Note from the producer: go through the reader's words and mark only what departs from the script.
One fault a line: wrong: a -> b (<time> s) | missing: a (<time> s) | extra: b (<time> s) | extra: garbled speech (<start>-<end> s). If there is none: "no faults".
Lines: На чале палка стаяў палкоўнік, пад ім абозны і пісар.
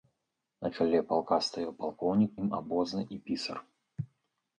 missing: пад (2.3 s)